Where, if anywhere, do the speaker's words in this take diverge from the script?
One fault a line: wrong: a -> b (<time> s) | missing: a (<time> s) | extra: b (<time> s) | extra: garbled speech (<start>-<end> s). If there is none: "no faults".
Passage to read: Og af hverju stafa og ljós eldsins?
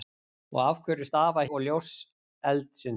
no faults